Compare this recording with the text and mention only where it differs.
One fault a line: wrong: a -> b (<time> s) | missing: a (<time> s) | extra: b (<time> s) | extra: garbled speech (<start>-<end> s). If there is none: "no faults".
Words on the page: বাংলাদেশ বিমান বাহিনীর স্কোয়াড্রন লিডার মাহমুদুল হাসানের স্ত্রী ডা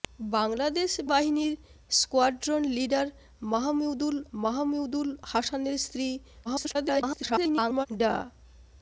missing: বিমান (0.9 s)
extra: মাহমুদুল (4.4 s)
extra: garbled speech (6.4-7.9 s)